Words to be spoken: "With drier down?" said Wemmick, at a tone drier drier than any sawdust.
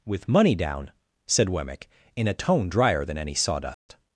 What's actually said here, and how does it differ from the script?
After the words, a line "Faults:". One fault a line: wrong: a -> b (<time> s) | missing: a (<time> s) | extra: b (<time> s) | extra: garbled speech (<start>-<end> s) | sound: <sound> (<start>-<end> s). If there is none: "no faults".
"With money down?" said Wemmick, in a tone drier than any sawdust.
Faults:
wrong: drier -> money (0.3 s)
wrong: at -> in (2.1 s)
missing: drier (3.0 s)
sound: dropout (3.7-3.9 s)